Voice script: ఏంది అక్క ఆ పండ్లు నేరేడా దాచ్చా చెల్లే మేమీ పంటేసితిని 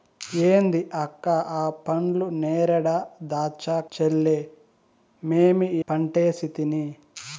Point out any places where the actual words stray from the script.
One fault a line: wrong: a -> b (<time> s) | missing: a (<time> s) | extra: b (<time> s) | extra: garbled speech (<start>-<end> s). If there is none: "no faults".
no faults